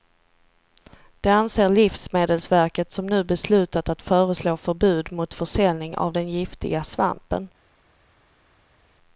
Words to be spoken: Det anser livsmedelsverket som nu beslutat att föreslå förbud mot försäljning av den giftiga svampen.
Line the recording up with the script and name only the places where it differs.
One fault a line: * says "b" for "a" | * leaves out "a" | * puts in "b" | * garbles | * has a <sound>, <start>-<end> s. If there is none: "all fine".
all fine